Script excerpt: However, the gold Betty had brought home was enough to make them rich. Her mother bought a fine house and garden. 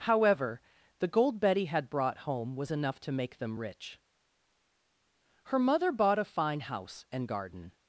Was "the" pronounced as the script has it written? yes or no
yes